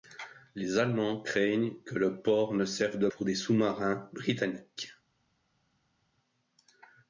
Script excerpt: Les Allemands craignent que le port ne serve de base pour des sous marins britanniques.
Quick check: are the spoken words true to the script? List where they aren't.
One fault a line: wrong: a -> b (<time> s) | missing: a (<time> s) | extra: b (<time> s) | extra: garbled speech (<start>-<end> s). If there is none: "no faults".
missing: base (3.1 s)